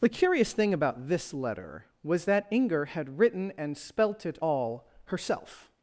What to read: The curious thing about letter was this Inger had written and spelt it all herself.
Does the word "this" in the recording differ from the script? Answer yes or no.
yes